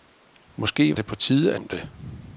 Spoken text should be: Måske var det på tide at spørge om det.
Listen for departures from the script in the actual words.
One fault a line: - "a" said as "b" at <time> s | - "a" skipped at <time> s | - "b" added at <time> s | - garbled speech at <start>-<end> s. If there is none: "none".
- "var" skipped at 0.9 s
- "at spørge" skipped at 1.5 s